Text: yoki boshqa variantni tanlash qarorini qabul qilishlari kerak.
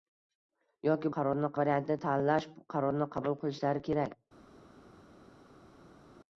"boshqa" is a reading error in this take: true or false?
true